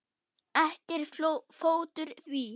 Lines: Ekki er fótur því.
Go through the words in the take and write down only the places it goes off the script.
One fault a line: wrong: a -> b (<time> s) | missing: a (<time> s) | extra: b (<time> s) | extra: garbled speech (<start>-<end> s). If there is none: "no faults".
no faults